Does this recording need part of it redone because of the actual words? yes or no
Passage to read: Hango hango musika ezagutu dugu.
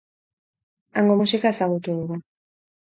yes